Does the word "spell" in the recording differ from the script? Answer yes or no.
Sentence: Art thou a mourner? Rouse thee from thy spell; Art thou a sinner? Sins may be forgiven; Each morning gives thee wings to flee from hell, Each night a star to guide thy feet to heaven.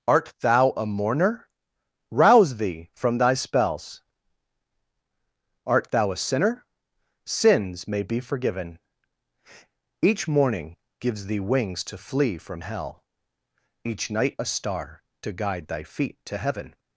yes